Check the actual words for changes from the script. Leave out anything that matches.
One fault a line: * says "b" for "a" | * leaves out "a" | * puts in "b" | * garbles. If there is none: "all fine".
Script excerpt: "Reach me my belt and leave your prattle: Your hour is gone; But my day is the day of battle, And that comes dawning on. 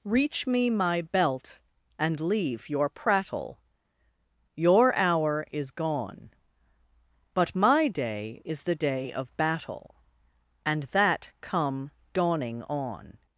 * says "come" for "comes"